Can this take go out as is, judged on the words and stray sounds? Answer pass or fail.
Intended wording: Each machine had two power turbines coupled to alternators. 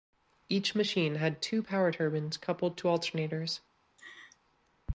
fail